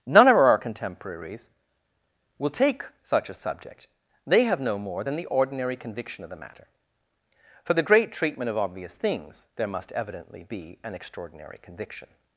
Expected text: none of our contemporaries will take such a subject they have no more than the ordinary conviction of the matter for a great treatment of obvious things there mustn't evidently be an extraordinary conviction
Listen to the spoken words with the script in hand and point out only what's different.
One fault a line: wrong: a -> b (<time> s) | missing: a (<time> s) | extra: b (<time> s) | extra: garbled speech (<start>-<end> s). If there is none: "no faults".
wrong: a -> the (7.7 s)
wrong: mustn't -> must (9.7 s)